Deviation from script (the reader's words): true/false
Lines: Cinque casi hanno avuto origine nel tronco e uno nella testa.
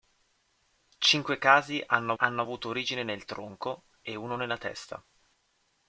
true